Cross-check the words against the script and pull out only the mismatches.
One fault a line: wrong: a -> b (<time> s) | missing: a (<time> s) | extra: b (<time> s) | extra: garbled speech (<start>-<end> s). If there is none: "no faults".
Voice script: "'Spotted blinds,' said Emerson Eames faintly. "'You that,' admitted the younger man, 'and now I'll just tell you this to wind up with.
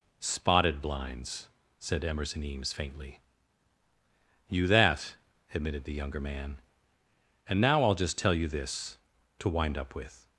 no faults